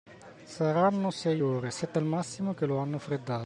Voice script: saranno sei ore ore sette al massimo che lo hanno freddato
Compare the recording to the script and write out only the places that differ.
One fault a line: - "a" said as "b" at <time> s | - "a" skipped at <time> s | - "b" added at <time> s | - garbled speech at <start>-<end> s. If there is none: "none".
- "ore" skipped at 1.7 s